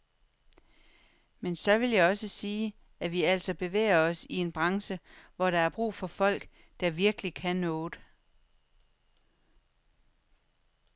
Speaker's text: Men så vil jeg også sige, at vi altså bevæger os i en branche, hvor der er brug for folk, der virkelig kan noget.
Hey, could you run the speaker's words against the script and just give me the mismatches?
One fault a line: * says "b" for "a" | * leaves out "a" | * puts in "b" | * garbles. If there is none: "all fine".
all fine